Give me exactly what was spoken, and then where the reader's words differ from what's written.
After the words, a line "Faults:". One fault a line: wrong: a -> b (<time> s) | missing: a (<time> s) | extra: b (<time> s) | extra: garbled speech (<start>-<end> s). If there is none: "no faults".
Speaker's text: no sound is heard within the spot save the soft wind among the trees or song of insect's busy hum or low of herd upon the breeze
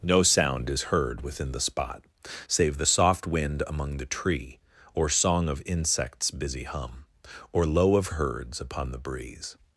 no sound is heard within the spot save the soft wind among the tree or song of insect's busy hum or low of herds upon the breeze
Faults:
wrong: trees -> tree (4.1 s)
wrong: herd -> herds (8.1 s)